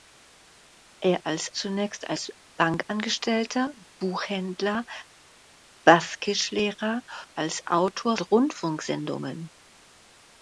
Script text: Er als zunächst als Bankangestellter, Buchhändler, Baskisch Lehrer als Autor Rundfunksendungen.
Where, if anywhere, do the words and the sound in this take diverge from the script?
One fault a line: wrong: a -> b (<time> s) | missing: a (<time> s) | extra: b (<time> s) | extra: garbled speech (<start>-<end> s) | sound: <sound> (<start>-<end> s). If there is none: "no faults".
no faults